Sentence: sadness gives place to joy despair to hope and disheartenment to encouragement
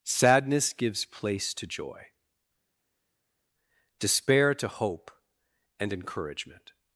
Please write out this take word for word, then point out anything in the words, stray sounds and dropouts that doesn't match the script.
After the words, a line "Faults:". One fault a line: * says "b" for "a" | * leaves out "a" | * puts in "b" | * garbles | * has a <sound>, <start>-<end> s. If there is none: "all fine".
sadness gives place to joy despair to hope and encouragement
Faults:
* leaves out "disheartenment to"